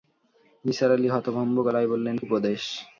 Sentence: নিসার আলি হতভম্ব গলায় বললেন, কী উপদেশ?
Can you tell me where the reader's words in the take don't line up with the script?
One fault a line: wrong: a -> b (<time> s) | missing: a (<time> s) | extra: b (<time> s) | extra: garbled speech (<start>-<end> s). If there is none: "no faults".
missing: কী (2.2 s)